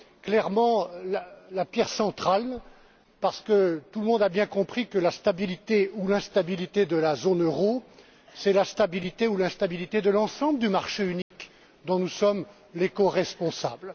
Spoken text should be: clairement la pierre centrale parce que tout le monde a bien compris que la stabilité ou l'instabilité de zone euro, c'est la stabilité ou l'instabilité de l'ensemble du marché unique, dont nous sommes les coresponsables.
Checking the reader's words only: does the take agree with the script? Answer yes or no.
no